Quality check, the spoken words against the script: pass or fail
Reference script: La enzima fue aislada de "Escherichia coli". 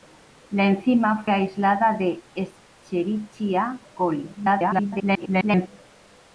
fail